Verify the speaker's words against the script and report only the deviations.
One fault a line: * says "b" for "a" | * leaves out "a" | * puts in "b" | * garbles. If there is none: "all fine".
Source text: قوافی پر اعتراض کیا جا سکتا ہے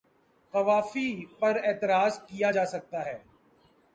all fine